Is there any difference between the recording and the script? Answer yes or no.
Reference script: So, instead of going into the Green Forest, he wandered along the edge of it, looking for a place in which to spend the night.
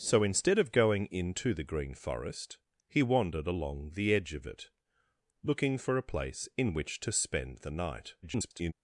yes